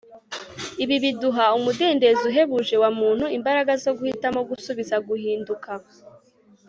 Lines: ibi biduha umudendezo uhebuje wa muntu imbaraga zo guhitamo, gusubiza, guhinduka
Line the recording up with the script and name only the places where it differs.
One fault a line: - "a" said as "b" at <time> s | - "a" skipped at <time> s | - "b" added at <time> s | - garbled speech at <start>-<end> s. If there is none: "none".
none